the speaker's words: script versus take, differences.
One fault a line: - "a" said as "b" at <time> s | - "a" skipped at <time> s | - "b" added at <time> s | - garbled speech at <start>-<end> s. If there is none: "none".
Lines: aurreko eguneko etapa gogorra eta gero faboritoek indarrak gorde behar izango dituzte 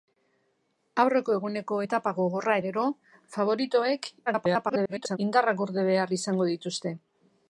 - "eta" skipped at 2.5 s
- garbled speech at 4.3-5.2 s